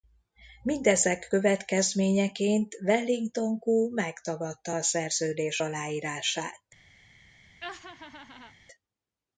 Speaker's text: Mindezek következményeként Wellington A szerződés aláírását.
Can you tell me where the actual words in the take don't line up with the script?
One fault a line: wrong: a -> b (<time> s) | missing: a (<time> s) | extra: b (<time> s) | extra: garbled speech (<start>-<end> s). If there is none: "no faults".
extra: Koo megtagadta (3.6 s)